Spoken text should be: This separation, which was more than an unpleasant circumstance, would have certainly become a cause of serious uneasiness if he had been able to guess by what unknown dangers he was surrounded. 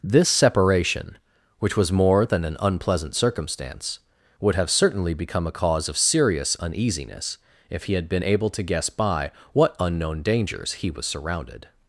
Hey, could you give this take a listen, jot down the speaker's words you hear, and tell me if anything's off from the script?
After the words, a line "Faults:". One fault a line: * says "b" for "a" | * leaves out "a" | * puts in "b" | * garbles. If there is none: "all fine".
This separation, which was more than an unpleasant circumstance, would have certainly become a cause of serious uneasiness if he had been able to guess by what unknown dangers he was surrounded.
Faults:
all fine